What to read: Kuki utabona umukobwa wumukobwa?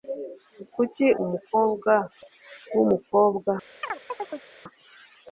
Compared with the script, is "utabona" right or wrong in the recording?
wrong